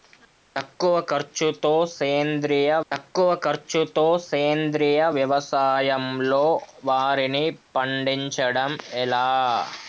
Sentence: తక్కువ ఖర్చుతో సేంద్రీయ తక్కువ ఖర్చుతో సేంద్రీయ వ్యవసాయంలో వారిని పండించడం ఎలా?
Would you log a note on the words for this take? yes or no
no